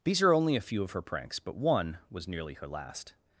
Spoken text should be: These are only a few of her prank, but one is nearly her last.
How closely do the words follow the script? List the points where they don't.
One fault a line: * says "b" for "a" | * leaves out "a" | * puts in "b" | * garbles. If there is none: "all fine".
* says "pranks" for "prank"
* says "was" for "is"